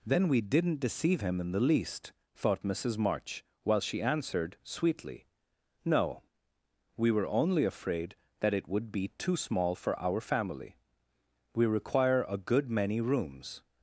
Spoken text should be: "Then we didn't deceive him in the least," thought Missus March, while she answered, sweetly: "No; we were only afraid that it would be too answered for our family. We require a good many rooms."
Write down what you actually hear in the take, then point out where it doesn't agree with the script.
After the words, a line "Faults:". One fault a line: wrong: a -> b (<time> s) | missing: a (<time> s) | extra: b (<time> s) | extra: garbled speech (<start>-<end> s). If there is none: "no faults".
"Then we didn't deceive him in the least," thought Missus March, while she answered, sweetly: "No; we were only afraid that it would be too small for our family. We require a good many rooms."
Faults:
wrong: answered -> small (9.3 s)